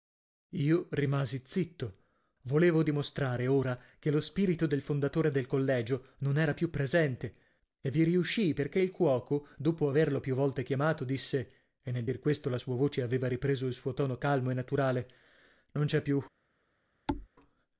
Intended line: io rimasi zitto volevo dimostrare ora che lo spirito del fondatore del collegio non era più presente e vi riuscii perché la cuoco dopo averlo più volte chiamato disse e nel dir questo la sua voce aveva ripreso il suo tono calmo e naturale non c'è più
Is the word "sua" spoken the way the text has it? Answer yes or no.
yes